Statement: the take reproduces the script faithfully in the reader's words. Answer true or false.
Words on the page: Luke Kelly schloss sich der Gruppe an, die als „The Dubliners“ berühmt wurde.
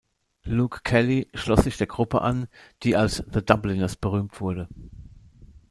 true